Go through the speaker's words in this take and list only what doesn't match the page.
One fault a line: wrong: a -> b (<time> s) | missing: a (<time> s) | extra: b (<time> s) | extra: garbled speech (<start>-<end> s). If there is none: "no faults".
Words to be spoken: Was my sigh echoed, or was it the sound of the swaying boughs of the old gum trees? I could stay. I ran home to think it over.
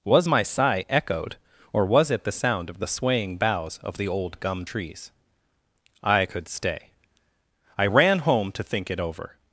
no faults